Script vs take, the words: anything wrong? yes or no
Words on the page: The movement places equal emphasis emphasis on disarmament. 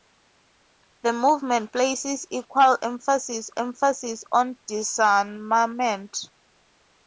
no